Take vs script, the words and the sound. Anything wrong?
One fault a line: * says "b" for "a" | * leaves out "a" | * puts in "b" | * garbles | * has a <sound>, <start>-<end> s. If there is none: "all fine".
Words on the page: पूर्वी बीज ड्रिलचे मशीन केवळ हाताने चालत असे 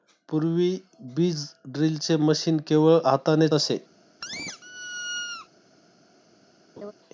* leaves out "चालत"
* has a squeak, 4.2-5.5 s
* has a laugh, 6.8-6.9 s